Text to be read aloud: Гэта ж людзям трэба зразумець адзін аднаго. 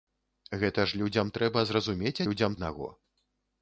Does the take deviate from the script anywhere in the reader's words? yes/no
yes